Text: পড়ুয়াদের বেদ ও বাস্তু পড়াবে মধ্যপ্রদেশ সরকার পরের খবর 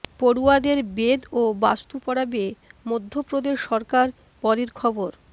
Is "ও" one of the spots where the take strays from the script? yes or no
no